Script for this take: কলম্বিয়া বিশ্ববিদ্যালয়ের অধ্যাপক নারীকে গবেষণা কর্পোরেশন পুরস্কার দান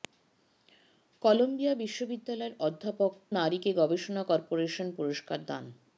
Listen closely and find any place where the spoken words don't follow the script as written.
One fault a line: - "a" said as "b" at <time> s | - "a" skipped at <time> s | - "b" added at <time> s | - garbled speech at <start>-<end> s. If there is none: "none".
none